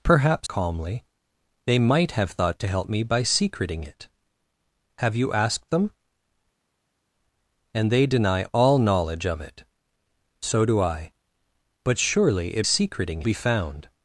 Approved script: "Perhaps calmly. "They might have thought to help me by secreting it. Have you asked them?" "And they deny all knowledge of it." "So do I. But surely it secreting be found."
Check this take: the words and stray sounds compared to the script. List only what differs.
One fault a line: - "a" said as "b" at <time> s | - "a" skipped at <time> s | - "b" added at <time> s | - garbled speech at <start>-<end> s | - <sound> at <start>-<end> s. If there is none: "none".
none